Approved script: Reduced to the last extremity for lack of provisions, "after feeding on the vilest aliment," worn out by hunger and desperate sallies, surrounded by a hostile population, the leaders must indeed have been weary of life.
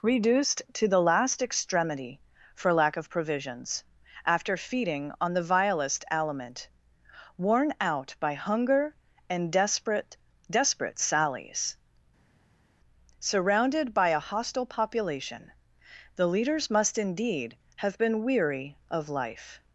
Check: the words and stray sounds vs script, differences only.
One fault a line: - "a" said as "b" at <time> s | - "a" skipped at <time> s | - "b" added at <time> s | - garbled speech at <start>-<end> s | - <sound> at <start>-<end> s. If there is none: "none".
- "desperate" added at 10.5 s